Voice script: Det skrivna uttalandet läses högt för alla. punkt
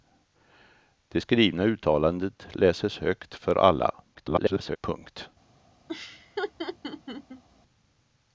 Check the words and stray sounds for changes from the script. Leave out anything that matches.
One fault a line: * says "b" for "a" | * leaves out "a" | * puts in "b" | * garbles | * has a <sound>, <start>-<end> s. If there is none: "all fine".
* garbles
* has a laugh, 5.9-7.4 s